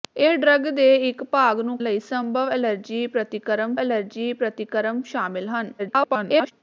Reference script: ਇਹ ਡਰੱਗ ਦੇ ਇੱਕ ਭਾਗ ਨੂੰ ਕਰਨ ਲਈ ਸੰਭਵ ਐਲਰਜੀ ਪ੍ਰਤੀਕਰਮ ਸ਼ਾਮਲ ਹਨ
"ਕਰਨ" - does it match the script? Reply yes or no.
no